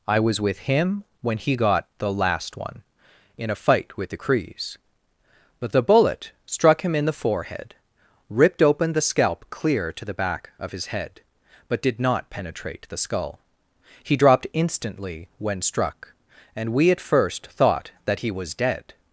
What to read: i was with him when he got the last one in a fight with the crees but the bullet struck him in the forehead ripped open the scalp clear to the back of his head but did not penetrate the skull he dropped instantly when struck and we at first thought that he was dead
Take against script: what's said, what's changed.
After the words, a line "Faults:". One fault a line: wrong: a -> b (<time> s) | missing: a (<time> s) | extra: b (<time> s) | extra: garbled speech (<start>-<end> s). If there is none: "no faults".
i was with him when he got the last one in a fight with the crees but the bullet struck him in the forehead ripped open the scalp clear to the back of his head but did not penetrate the skull he dropped instantly when struck and we at first thought that he was dead
Faults:
no faults